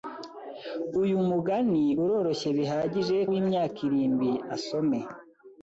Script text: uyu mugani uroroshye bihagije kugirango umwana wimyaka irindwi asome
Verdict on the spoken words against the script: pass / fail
fail